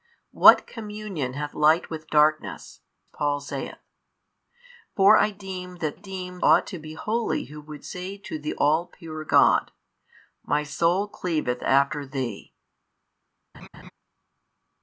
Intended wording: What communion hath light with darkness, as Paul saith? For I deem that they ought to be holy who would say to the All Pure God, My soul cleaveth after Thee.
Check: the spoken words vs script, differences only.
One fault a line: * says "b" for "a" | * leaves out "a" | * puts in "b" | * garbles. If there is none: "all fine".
* leaves out "as"
* says "deem" for "they"